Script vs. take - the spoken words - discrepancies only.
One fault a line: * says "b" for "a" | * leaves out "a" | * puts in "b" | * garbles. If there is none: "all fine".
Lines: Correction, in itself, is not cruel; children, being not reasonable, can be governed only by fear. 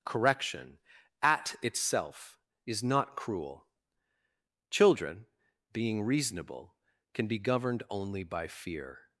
* says "at" for "in"
* leaves out "not"